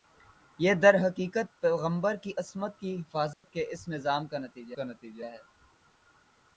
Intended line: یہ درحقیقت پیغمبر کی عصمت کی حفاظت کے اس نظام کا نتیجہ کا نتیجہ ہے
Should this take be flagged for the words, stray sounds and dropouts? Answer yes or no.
yes